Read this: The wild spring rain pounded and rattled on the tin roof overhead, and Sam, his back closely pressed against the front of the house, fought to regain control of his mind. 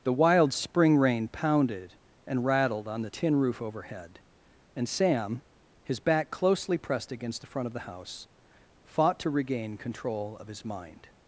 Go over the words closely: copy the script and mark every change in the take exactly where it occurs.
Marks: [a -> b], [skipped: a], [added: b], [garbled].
The wild spring rain pounded and rattled on the tin roof overhead, and Sam, his back closely pressed against the front of the house, fought to regain control of his mind.